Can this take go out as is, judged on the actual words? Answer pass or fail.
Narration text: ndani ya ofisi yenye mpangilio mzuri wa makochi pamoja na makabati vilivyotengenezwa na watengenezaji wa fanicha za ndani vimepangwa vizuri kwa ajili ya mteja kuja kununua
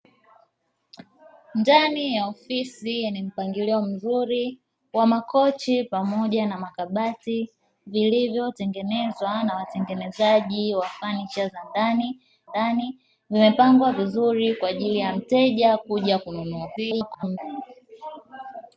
fail